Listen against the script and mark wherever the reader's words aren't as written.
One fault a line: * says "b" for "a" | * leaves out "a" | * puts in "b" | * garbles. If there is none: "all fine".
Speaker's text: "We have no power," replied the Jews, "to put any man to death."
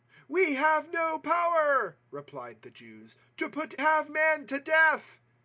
* says "have" for "any"